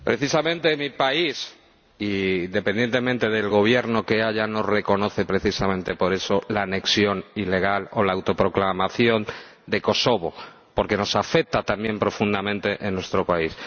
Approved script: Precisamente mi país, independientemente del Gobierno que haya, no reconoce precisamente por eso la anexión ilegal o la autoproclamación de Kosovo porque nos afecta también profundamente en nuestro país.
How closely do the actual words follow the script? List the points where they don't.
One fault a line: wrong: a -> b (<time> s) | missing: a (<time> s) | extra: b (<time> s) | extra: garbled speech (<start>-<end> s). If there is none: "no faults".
no faults